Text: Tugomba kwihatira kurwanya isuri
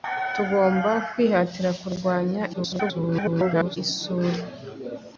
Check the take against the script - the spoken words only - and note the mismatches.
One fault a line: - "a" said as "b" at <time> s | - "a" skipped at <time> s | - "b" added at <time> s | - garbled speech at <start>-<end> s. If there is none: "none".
- garbled speech at 2.5-3.8 s